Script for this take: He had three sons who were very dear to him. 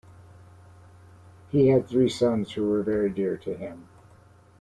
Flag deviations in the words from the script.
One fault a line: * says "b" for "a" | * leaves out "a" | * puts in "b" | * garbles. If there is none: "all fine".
all fine